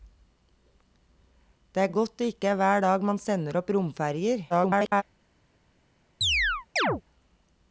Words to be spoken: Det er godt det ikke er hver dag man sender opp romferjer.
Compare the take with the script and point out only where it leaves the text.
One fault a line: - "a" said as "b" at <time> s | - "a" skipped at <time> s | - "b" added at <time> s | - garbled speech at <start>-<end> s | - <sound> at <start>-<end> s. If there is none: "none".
- garbled speech at 4.5-5.0 s
- chirp at 6.2-7.0 s